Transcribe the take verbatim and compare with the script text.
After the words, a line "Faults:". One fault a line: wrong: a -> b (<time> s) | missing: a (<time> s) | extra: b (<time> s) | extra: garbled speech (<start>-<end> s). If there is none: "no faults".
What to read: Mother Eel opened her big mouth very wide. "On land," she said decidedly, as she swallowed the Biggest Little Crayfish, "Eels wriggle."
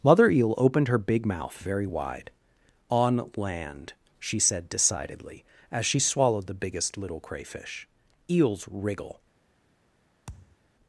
Mother Eel opened her big mouth very wide. "On land," she said decidedly, as she swallowed the Biggest Little Crayfish, "Eels wriggle."
Faults:
no faults